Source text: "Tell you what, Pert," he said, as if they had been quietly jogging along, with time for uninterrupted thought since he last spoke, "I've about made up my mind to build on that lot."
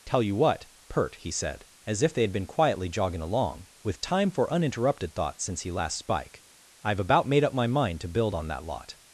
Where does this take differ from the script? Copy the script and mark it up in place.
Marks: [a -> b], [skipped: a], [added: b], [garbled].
"Tell you what, Pert," he said, as if they had been quietly jogging along, with time for uninterrupted thought since he last [spoke, -> spike] "I've about made up my mind to build on that lot."